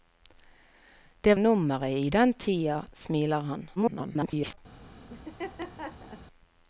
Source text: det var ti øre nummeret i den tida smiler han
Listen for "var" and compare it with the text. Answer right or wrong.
wrong